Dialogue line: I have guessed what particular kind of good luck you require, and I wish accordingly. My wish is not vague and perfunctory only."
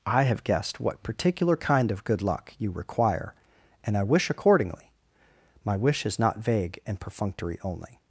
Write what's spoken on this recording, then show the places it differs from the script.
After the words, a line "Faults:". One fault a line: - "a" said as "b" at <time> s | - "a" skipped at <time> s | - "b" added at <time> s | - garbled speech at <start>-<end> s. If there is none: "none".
I have guessed what particular kind of good luck you require, and I wish accordingly. My wish is not vague and perfunctory only."
Faults:
none